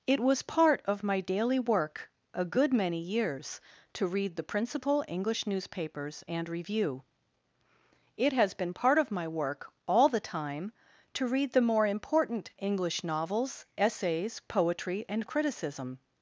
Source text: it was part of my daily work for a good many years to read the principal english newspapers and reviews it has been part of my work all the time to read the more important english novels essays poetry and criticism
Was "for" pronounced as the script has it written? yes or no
no